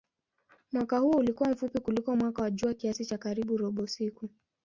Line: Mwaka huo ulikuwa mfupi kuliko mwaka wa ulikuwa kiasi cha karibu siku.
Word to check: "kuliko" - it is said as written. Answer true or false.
true